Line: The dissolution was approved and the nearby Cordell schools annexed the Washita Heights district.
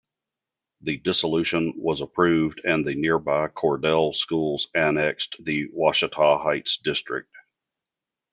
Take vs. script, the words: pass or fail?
pass